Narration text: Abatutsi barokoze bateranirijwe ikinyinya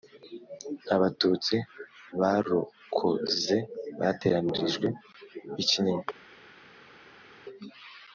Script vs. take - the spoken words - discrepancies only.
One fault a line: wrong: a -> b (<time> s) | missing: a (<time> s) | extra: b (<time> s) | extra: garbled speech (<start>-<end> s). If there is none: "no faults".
no faults